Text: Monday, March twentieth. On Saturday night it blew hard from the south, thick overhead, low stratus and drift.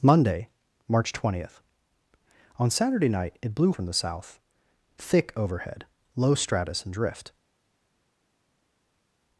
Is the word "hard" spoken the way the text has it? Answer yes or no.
no